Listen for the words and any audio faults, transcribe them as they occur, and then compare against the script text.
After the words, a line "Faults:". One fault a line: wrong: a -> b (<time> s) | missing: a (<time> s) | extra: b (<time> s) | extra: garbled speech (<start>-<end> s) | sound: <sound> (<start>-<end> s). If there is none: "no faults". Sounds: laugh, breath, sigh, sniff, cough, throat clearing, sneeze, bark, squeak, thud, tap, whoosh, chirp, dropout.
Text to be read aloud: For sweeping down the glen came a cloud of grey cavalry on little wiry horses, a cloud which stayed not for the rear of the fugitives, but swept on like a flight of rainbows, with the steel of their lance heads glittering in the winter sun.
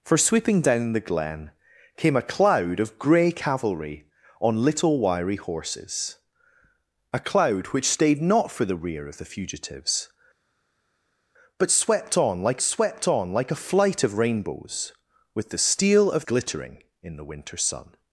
For sweeping down the glen came a cloud of grey cavalry on little wiry horses, a cloud which stayed not for the rear of the fugitives, but swept on like swept on like a flight of rainbows, with the steel of glittering in the winter sun.
Faults:
extra: swept on like (12.6 s)
missing: their lance heads (16.3 s)